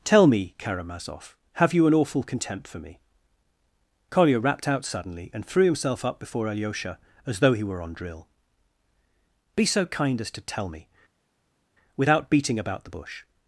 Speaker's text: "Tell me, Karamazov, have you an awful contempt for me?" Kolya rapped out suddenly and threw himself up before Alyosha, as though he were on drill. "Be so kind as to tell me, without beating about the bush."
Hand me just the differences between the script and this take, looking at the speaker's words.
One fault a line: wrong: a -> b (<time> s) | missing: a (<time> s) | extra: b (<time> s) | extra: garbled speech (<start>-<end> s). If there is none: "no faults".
no faults